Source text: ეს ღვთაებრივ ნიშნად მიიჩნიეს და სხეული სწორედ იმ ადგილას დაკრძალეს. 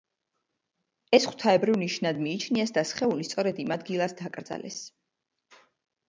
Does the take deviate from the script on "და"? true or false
false